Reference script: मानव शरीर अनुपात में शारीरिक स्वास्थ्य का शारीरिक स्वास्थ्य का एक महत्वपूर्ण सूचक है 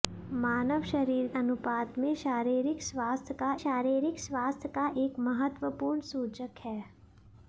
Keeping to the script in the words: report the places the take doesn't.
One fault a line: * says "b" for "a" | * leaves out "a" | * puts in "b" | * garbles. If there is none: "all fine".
all fine